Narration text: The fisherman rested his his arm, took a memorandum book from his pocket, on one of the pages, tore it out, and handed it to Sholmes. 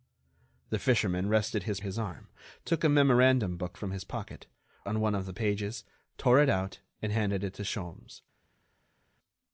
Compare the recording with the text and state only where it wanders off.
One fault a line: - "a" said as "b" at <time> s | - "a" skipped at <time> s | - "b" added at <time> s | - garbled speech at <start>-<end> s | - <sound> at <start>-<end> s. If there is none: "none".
none